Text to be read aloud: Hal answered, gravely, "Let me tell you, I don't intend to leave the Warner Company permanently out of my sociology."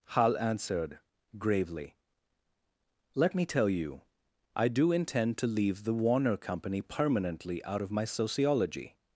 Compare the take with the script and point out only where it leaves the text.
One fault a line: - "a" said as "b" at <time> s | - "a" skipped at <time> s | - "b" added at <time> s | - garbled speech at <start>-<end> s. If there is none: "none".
- "don't" said as "do" at 4.7 s